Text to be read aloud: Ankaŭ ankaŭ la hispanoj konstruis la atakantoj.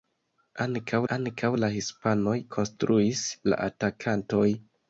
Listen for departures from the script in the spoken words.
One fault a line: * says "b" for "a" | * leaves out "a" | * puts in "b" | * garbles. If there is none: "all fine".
all fine